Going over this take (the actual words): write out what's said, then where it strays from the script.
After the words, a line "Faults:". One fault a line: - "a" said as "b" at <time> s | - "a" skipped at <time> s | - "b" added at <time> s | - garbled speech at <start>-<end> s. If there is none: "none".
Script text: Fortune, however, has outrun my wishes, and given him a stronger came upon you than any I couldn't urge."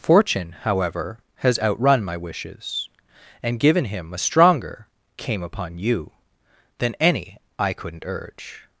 Fortune, however, has outrun my wishes, and given him a stronger came upon you than any I couldn't urge."
Faults:
none